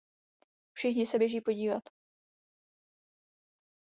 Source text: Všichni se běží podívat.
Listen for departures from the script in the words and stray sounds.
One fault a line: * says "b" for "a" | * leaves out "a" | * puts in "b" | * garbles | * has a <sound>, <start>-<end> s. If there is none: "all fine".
all fine